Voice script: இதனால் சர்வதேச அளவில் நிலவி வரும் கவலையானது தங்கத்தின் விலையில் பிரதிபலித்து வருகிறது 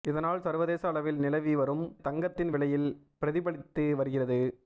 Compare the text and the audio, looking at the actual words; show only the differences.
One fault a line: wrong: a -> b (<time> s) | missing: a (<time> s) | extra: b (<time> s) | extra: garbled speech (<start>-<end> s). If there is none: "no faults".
missing: கவலையானது (1.8 s)